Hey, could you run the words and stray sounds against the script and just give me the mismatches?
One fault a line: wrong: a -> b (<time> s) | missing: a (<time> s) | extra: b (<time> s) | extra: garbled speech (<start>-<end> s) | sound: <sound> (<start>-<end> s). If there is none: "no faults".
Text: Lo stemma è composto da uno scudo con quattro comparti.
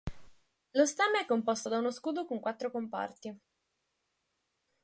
no faults